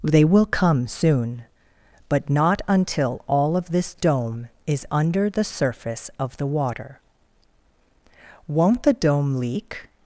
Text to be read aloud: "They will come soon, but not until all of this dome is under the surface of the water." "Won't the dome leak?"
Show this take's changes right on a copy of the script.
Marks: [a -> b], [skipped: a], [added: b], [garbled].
"They will come soon, but not until all of this dome is under the surface of the water." "Won't the dome leak?"